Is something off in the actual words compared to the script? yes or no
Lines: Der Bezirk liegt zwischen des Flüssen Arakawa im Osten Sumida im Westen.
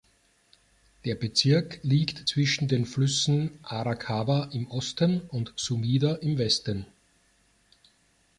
yes